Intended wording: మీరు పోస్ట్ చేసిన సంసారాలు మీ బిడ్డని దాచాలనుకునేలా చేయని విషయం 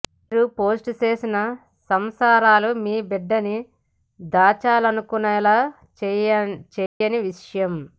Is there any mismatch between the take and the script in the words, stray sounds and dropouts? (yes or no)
yes